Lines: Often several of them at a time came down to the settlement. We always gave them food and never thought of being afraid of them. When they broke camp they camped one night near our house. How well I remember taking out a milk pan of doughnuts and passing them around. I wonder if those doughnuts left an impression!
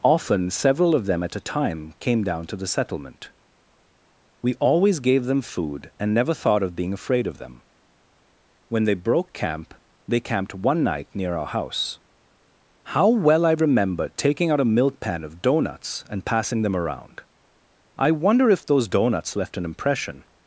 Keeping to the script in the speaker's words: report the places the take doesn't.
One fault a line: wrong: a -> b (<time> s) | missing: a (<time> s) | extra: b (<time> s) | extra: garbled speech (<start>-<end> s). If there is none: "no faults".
no faults